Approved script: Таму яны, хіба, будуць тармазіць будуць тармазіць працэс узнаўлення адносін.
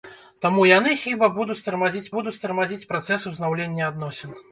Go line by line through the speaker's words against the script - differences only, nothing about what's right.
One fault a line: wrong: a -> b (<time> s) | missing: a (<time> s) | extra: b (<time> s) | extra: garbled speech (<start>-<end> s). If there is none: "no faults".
no faults